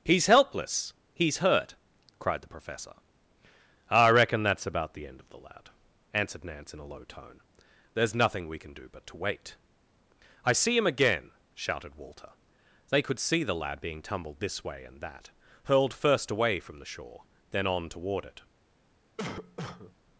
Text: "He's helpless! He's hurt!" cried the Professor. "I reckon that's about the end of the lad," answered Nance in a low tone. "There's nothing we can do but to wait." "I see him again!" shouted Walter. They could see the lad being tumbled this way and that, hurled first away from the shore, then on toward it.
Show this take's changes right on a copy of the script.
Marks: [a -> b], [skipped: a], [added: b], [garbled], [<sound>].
"He's helpless! He's hurt!" cried the Professor. "I reckon that's about the end of the lad," answered Nance in a low tone. "There's nothing we can do but to wait." "I see him again!" shouted Walter. They could see the lad being tumbled this way and that, hurled first away from the shore, then on toward it. [cough]